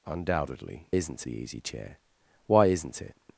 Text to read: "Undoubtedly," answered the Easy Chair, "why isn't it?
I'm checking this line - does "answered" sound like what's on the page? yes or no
no